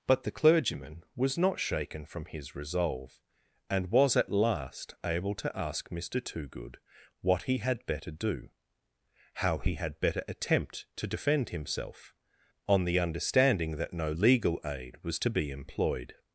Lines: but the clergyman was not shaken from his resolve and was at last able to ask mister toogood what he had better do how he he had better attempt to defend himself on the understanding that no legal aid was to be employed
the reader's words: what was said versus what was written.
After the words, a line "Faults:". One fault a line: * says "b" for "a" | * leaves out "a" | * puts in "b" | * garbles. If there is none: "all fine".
but the clergyman was not shaken from his resolve and was at last able to ask mister toogood what he had better do how he had better attempt to defend himself on the understanding that no legal aid was to be employed
Faults:
* leaves out "he"